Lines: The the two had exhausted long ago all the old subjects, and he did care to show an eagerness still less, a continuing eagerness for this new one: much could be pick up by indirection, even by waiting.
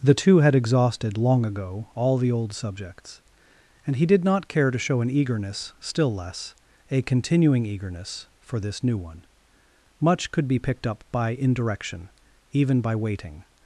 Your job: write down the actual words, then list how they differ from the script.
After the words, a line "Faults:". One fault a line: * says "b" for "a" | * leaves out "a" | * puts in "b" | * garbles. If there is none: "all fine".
The two had exhausted long ago all the old subjects, and he did not care to show an eagerness still less, a continuing eagerness for this new one: much could be picked up by indirection, even by waiting.
Faults:
* leaves out "the"
* puts in "not"
* says "picked" for "pick"